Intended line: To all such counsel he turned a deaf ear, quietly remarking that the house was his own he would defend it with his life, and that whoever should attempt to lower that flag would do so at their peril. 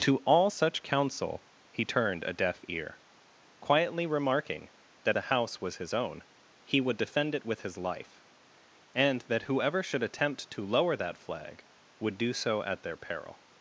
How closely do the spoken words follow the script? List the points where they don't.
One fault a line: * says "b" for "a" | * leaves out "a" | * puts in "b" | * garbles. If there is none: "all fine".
all fine